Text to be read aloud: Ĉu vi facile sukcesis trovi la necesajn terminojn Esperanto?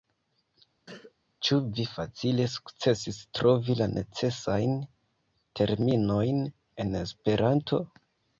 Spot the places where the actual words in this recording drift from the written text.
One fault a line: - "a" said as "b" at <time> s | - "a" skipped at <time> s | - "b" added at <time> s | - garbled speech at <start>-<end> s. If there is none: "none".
- "en" added at 6.9 s